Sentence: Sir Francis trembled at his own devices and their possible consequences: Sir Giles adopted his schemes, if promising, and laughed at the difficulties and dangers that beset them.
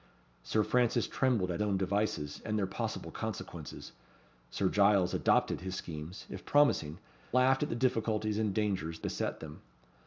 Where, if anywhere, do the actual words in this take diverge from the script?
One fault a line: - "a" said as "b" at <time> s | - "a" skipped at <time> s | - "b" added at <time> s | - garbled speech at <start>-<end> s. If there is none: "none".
- "his" skipped at 1.6 s
- "and" skipped at 7.0 s
- "that" skipped at 9.0 s